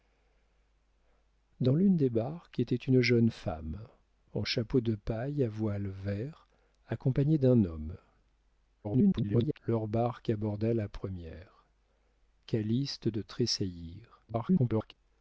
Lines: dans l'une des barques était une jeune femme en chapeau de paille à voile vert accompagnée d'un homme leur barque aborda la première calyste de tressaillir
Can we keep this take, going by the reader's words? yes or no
no